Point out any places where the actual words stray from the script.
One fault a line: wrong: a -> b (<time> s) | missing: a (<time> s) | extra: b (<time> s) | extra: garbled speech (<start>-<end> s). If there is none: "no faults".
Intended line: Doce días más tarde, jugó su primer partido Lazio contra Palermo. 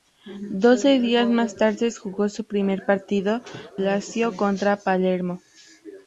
no faults